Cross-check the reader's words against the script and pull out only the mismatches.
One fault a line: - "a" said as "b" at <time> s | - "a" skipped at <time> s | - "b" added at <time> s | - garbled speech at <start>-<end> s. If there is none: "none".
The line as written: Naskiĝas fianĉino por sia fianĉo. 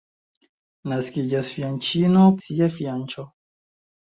- "por" skipped at 2.3 s